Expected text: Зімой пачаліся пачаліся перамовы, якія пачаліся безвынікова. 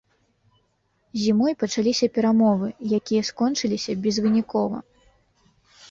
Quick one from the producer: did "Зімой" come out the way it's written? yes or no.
yes